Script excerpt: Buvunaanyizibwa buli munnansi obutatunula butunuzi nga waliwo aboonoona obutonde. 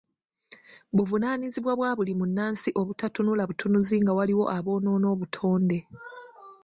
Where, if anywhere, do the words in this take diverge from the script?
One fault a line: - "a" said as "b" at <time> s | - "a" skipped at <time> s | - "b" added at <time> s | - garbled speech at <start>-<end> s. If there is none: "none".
- "bwa" added at 1.8 s